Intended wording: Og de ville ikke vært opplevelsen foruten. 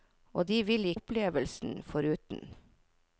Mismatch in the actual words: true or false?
true